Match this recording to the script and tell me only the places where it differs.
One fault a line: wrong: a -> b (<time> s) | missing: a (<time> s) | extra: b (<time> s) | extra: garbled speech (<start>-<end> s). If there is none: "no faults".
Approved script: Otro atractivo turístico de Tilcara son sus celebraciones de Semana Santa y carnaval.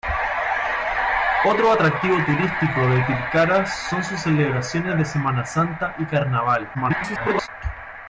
extra: garbled speech (6.7-7.5 s)